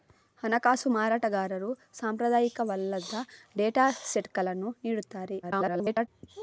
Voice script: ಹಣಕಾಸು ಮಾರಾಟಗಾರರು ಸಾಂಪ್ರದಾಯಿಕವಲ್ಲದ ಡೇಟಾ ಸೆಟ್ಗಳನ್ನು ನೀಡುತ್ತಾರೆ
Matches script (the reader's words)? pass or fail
fail